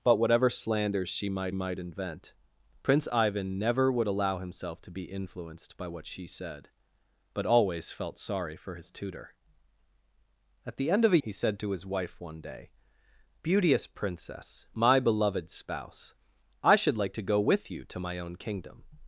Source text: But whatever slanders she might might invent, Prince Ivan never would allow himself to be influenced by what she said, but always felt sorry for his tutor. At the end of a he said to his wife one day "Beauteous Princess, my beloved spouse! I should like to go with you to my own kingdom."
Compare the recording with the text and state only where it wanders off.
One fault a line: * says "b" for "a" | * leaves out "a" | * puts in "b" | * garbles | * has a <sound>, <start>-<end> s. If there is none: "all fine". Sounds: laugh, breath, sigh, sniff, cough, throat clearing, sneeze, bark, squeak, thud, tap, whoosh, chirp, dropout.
all fine